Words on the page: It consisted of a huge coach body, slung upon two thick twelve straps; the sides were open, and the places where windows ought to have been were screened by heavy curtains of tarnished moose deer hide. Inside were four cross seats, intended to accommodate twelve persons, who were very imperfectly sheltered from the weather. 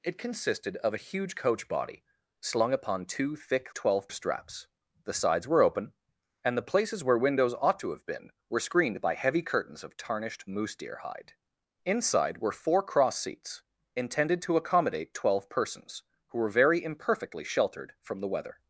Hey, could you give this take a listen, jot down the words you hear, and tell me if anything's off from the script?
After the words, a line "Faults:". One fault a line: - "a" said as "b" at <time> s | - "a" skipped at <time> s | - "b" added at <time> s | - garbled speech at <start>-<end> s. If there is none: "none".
It consisted of a huge coach body, slung upon two thick twelve straps; the sides were open, and the places where windows ought to have been were screened by heavy curtains of tarnished moose deer hide. Inside were four cross seats, intended to accommodate twelve persons, who were very imperfectly sheltered from the weather.
Faults:
none